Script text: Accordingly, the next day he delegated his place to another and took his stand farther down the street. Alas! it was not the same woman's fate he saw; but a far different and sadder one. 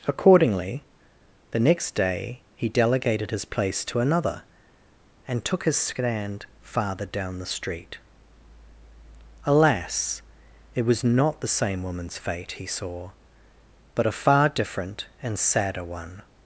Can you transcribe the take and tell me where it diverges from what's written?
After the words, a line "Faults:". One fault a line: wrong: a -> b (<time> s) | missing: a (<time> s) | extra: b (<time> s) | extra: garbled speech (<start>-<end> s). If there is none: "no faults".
Accordingly, the next day he delegated his place to another and took his stand farther down the street. Alas! it was not the same woman's fate he saw; but a far different and sadder one.
Faults:
no faults